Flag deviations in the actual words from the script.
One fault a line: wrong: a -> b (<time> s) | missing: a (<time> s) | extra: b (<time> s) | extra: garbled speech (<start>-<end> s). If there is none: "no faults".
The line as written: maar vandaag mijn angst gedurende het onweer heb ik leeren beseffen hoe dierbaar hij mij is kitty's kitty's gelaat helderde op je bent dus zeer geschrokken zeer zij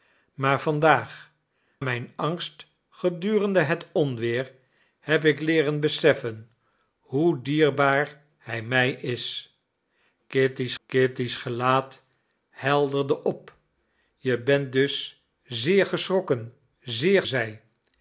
no faults